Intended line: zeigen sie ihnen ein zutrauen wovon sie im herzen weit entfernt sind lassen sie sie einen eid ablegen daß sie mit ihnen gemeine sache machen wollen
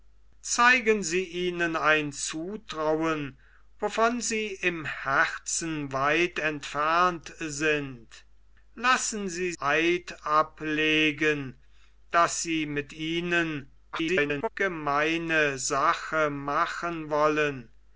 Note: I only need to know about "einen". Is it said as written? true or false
false